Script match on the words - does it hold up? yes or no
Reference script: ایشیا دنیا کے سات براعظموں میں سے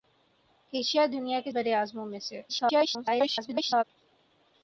no